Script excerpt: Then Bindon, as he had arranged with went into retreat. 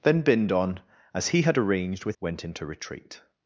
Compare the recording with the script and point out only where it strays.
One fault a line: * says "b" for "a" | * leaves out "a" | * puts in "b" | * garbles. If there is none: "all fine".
all fine